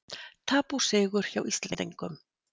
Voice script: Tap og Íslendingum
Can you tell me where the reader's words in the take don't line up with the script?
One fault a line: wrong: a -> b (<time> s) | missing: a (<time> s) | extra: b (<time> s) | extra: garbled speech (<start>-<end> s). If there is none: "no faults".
extra: sigur hjá (0.9 s)